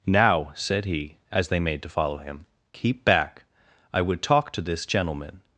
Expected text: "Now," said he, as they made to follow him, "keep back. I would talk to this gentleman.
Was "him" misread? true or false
false